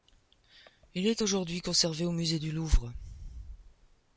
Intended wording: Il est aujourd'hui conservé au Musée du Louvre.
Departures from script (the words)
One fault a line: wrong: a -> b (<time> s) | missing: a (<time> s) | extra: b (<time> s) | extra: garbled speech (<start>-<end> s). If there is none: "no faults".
no faults